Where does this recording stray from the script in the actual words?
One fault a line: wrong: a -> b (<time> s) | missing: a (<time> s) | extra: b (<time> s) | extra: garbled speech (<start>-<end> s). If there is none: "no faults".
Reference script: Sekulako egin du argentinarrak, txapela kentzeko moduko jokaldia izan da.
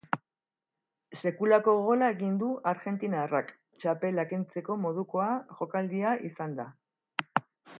extra: gola (1.9 s)